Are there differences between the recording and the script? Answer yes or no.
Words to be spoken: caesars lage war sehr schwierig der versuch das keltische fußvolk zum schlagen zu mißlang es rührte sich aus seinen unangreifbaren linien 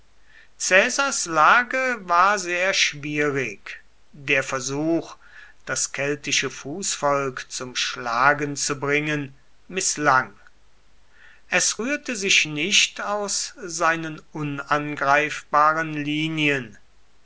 yes